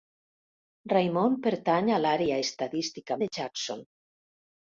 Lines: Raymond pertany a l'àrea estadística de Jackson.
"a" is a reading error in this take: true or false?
false